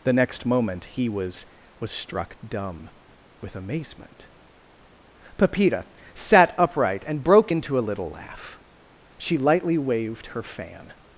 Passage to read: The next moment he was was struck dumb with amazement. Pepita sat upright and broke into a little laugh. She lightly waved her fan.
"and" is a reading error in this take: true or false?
false